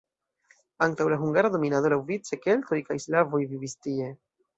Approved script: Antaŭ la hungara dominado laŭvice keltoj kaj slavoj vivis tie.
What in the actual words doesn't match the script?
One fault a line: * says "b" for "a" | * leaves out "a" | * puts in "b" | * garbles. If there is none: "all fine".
all fine